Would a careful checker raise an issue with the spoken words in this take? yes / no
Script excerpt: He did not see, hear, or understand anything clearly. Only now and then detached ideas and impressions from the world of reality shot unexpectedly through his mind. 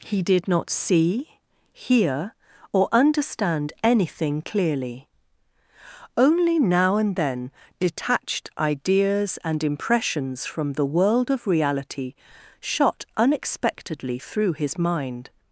no